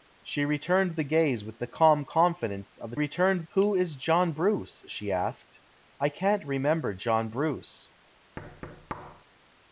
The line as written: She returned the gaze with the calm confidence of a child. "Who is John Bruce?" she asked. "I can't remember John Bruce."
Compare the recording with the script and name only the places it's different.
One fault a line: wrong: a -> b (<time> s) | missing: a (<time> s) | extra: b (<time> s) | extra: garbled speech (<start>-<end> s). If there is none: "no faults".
wrong: child -> returned (2.9 s)